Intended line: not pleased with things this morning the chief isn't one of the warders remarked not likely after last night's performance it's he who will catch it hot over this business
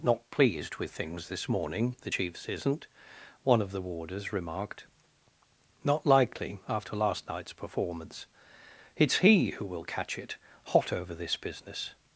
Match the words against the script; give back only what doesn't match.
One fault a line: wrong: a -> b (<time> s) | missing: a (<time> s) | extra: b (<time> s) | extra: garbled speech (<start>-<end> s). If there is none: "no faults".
wrong: chief -> chiefs (2.1 s)